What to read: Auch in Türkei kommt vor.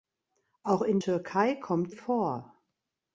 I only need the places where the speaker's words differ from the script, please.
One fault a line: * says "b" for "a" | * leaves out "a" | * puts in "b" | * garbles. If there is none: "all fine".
all fine